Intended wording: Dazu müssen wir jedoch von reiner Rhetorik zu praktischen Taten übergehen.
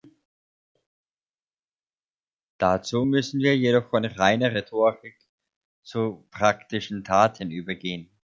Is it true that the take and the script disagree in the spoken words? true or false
false